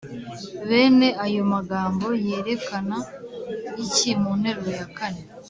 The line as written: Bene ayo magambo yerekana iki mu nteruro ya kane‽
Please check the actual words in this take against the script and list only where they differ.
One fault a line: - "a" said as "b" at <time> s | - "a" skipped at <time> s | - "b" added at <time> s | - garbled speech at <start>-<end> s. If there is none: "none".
none